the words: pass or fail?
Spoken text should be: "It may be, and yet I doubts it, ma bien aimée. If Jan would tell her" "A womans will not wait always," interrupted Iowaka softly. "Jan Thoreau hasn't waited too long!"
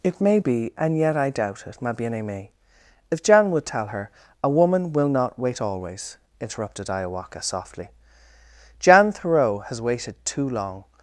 fail